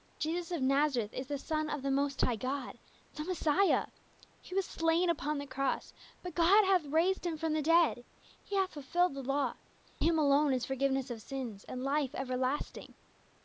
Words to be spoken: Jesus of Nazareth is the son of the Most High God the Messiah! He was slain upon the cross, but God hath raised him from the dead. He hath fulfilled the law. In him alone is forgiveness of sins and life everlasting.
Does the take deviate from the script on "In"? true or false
true